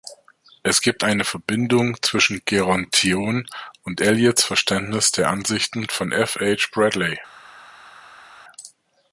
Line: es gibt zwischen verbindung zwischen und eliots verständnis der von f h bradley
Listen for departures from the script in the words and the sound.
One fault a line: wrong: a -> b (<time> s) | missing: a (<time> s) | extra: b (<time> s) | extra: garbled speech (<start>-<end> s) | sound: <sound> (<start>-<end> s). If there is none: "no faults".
wrong: zwischen -> eine (1.0 s)
extra: gerontion (2.4 s)
extra: ansichten (5.3 s)